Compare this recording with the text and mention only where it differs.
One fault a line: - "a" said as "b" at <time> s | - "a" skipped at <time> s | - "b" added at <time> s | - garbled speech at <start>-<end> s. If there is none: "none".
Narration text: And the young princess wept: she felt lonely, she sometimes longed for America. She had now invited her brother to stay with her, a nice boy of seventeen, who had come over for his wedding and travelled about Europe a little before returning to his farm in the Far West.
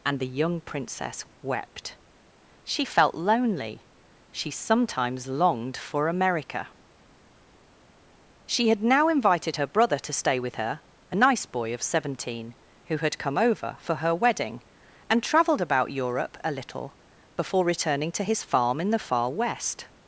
- "his" said as "her" at 13.9 s